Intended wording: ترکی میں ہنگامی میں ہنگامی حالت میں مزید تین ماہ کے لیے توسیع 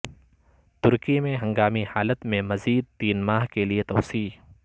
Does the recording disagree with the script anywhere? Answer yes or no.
yes